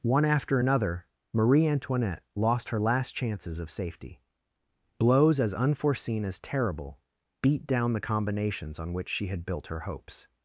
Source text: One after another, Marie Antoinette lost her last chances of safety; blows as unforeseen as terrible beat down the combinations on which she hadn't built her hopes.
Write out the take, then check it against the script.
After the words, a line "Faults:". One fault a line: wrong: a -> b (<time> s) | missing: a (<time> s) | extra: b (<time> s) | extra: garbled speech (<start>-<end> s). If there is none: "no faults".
One after another, Marie Antoinette lost her last chances of safety; blows as unforeseen as terrible beat down the combinations on which she had built her hopes.
Faults:
wrong: hadn't -> had (9.3 s)